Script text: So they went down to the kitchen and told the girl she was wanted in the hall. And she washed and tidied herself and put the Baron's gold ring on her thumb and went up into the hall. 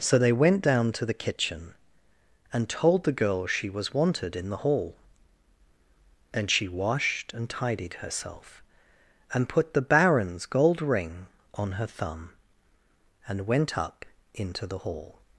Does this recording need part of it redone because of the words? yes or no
no